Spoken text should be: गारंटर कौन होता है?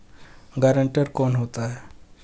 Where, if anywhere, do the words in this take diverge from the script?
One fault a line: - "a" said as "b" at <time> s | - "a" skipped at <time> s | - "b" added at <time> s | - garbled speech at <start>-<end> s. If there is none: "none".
none